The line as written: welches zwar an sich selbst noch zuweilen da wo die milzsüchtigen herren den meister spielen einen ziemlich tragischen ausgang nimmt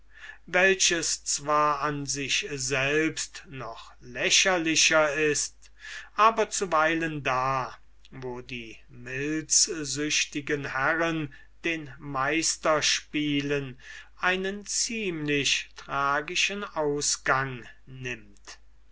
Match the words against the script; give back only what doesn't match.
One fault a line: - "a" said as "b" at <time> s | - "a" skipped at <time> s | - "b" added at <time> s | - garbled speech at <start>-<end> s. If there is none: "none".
- "lächerlicher ist aber" added at 4.0 s